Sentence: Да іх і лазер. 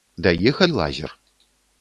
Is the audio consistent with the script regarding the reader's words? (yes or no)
yes